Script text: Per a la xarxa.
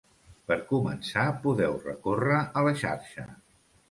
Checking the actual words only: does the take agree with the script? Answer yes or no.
no